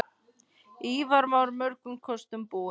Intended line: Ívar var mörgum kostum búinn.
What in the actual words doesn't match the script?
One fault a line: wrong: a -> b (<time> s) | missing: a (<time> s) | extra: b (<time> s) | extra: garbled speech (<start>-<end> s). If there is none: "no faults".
no faults